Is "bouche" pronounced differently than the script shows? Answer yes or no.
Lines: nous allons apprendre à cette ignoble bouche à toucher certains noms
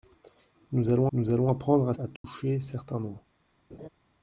yes